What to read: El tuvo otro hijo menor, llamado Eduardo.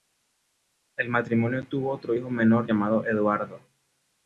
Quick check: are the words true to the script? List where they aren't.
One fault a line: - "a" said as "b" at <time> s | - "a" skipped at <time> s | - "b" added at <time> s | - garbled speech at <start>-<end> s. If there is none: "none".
- "matrimonio" added at 1.1 s